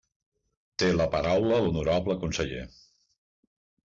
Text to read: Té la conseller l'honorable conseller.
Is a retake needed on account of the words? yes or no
yes